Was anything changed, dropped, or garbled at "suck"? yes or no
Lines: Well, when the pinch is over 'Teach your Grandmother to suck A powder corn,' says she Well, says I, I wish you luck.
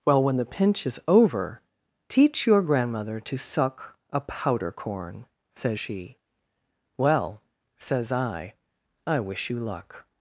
no